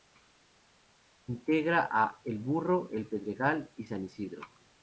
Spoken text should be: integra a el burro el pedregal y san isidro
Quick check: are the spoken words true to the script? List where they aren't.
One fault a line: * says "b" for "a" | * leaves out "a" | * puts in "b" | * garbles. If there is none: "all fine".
all fine